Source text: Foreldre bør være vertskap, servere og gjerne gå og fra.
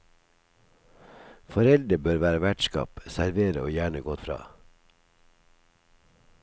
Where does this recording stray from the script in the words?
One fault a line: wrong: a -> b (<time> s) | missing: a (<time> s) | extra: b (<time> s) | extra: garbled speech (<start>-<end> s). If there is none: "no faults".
no faults